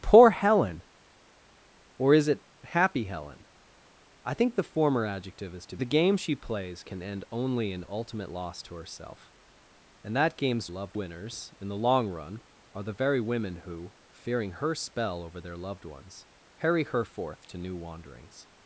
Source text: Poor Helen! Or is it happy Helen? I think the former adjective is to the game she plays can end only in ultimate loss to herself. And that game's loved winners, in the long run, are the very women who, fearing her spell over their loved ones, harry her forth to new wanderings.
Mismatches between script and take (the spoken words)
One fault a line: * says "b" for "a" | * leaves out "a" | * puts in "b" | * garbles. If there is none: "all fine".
all fine